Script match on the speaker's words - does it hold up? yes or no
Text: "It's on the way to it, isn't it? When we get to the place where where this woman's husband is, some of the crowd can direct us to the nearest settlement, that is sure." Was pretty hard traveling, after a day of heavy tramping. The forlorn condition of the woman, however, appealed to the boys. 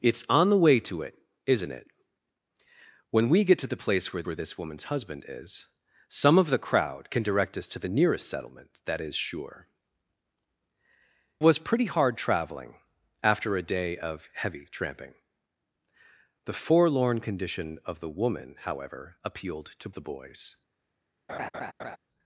yes